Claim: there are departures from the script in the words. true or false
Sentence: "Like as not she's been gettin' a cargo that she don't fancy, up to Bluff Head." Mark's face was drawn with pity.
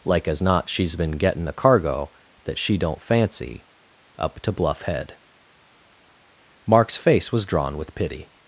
false